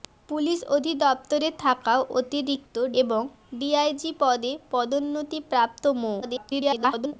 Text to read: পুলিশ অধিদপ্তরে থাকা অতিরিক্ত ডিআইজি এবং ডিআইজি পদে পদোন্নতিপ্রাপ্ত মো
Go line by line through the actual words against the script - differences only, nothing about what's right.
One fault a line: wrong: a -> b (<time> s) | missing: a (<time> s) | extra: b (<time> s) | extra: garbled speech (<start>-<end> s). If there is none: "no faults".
missing: ডিআইজি (2.8 s)
extra: garbled speech (6.2-7.1 s)